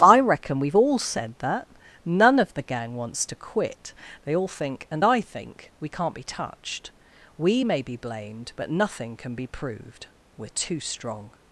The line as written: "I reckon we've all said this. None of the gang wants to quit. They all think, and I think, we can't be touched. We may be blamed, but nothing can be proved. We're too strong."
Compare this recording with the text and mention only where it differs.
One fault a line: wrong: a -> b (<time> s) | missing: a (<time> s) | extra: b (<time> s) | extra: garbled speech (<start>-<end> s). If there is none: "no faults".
wrong: this -> that (1.4 s)